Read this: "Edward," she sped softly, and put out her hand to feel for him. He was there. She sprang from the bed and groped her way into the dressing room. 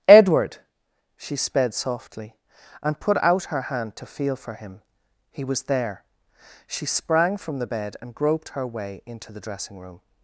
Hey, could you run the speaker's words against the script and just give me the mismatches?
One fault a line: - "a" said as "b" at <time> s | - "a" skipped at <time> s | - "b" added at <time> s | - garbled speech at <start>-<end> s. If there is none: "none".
none